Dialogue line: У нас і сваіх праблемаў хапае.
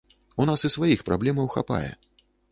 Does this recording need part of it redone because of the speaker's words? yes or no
no